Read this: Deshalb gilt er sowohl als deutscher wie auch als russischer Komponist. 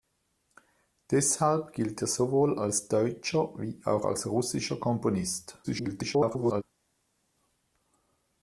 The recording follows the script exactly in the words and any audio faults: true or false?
false